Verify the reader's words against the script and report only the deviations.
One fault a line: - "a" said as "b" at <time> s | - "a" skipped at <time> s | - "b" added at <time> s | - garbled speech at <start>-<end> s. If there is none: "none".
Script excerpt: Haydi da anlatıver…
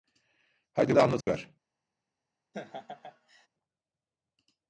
none